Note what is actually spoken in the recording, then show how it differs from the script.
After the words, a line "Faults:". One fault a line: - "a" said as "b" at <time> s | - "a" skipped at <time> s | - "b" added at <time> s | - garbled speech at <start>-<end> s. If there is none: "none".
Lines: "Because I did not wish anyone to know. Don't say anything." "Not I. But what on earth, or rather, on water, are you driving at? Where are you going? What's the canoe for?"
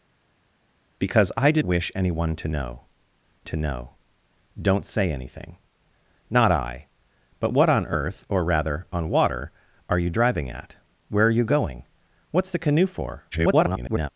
"Because I did wish anyone to know to know. Don't say anything." "Not I. But what on earth, or rather, on water, are you driving at? Where are you going? What's the canoe for?" [garbled]
Faults:
- "not" skipped at 1.6 s
- "to know" added at 3.4 s
- garbled speech at 13.3-14.1 s